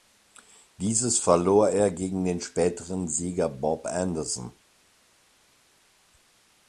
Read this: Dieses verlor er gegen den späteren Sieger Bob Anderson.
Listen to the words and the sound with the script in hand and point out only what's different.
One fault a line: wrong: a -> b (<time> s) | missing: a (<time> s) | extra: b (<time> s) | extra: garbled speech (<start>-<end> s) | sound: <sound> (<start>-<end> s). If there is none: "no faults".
no faults